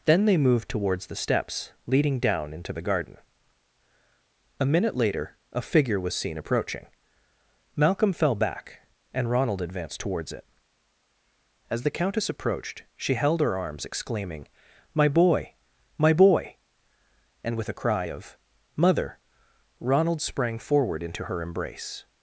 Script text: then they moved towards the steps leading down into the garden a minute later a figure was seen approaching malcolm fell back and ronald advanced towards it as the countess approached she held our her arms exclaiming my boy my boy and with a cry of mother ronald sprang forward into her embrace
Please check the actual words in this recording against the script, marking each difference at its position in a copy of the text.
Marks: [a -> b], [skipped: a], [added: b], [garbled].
then they moved towards the steps leading down into the garden a minute later a figure was seen approaching malcolm fell back and ronald advanced towards it as the countess approached she held [skipped: our] her arms exclaiming my boy my boy and with a cry of mother ronald sprang forward into her embrace